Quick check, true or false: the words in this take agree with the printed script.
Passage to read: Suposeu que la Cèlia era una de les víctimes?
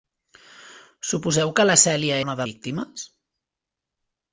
false